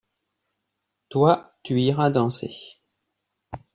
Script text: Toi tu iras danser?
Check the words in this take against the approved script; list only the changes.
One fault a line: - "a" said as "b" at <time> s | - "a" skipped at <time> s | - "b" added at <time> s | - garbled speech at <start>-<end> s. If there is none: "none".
none